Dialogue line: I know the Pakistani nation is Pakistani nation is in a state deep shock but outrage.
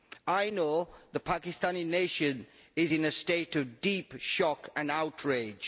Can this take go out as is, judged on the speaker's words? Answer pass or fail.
fail